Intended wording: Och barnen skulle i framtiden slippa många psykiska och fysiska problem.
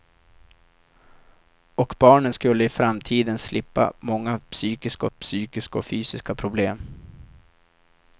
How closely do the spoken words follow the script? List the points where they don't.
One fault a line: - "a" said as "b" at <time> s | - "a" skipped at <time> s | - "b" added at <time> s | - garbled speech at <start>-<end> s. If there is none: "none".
- "psykiska" added at 5.1 s